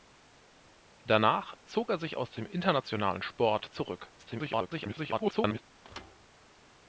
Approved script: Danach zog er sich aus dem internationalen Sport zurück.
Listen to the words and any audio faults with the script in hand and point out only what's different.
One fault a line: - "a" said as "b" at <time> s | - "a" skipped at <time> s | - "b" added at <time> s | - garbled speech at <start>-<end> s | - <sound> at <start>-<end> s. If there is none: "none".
- garbled speech at 4.2-5.6 s
- thud at 5.8-6.3 s